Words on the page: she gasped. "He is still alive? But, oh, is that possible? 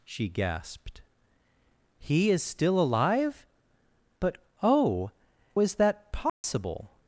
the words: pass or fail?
pass